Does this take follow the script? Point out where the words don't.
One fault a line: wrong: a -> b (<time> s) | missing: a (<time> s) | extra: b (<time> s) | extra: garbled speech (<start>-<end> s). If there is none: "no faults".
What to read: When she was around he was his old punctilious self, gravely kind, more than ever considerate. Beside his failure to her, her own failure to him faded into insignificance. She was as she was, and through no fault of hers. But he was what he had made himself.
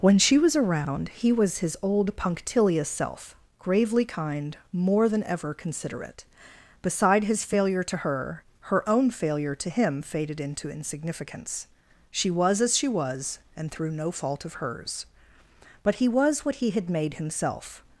no faults